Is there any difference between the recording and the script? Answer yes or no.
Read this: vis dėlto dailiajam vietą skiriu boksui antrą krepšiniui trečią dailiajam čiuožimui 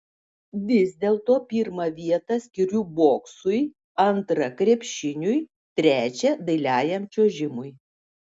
yes